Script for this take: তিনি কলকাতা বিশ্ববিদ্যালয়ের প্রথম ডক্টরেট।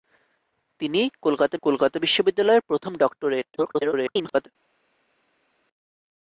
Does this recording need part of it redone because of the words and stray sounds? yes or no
yes